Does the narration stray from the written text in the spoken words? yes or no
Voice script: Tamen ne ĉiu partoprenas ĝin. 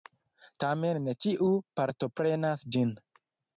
no